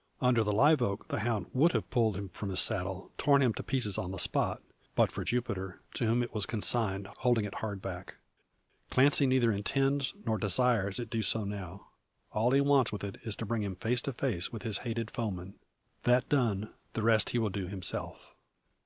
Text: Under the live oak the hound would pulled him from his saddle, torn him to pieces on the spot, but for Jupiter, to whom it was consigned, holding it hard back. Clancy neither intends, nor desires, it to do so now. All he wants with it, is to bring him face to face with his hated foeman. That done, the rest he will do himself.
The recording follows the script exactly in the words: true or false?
false